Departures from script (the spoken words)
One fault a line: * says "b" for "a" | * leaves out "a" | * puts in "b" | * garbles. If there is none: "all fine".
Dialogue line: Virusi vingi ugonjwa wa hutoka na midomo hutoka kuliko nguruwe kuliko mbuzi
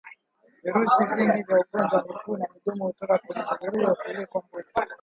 * puts in "vya"
* says "miguu" for "hutoka"
* says "kwenye" for "kuliko"